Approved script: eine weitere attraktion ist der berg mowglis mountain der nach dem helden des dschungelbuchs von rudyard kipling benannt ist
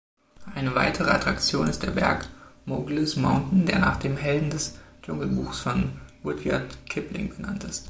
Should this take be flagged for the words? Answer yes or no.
no